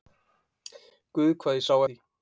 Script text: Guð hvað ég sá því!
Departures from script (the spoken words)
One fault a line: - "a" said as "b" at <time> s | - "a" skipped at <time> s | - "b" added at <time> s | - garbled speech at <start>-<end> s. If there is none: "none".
none